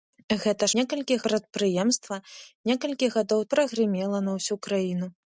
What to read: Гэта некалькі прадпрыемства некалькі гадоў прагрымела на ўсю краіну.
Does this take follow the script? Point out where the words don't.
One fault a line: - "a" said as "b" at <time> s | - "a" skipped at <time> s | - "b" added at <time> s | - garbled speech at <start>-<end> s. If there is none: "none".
none